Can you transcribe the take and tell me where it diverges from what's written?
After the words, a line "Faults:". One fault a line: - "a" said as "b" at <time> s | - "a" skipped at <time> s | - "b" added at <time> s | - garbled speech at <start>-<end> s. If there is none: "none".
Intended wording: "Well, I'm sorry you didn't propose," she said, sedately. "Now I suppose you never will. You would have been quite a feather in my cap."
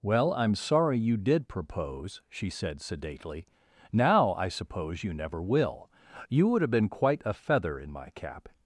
"Well, I'm sorry you did propose," she said, sedately. "Now I suppose you never will. You would have been quite a feather in my cap."
Faults:
- "didn't" said as "did" at 1.2 s